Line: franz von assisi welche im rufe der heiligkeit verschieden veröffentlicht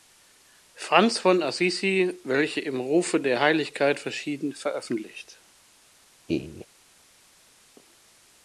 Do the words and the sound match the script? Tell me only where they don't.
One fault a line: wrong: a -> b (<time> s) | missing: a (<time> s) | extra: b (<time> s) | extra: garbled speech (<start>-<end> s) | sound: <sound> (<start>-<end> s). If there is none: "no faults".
sound: laugh (6.3-6.7 s)